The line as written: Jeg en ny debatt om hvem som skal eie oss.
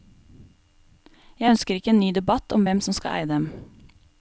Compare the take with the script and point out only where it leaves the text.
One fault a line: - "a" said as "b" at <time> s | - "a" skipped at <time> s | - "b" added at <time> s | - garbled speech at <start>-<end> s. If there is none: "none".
- "ønsker ikke" added at 1.5 s
- "oss" said as "dem" at 3.3 s